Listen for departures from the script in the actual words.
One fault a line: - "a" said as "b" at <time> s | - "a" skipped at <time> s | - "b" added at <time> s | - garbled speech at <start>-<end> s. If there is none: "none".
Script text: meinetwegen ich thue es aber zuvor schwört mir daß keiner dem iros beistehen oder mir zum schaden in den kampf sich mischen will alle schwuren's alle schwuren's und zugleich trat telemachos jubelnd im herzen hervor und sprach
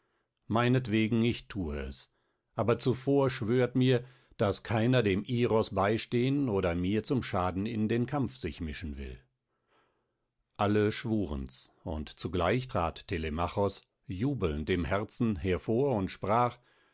- "alle schwuren's" skipped at 11.7 s